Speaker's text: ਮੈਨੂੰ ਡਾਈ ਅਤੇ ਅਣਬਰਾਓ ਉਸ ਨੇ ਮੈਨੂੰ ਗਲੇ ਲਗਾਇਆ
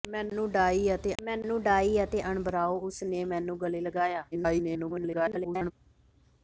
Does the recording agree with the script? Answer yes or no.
no